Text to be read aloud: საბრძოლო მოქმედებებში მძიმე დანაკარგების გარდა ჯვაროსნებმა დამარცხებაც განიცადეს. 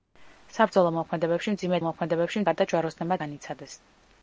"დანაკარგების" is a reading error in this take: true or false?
true